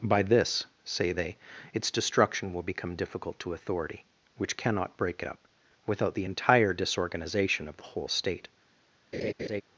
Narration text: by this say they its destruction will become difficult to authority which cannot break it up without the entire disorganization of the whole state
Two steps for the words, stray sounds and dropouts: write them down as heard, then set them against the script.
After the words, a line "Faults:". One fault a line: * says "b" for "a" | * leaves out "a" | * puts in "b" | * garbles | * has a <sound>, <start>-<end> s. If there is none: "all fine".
by this say they its destruction will become difficult to authority which cannot break it up without the entire disorganization of the whole state
Faults:
* has a laugh, 9.1-9.6 s